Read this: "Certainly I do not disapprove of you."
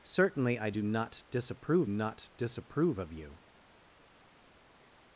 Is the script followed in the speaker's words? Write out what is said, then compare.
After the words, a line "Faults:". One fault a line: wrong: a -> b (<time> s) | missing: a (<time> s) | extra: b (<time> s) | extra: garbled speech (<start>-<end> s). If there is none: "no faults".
"Certainly I do not disapprove not disapprove of you."
Faults:
extra: not disapprove (1.8 s)